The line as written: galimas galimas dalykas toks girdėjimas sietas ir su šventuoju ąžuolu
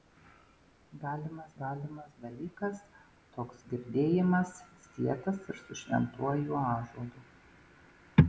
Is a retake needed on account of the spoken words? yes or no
no